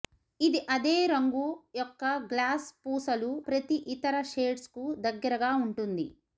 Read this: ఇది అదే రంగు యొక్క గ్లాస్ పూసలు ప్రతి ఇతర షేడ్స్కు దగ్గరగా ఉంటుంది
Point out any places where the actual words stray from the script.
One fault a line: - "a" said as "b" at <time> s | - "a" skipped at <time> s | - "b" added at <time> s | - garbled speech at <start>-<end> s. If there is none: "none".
none